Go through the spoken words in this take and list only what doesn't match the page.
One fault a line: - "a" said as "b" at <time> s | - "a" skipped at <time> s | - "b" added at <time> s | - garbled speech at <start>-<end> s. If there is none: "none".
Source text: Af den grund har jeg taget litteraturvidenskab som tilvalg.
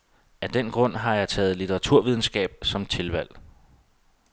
none